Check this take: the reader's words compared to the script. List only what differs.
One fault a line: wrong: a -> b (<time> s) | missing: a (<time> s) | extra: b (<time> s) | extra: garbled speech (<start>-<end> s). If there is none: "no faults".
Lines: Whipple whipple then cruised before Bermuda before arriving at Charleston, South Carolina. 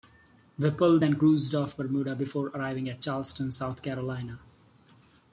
missing: whipple (1.0 s)
wrong: before -> off (1.5 s)